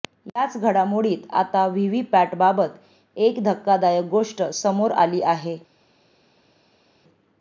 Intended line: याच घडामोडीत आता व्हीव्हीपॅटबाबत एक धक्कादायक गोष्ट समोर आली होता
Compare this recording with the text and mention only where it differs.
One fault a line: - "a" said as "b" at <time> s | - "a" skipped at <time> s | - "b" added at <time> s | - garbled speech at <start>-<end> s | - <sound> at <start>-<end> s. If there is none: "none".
- "होता" said as "आहे" at 5.2 s